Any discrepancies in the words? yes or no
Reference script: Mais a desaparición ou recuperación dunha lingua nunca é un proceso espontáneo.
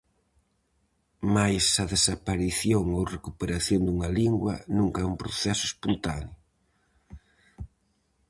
no